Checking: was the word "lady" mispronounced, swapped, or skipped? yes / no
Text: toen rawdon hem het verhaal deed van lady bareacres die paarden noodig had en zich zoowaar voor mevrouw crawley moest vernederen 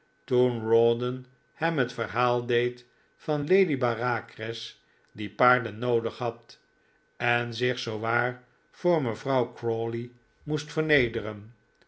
no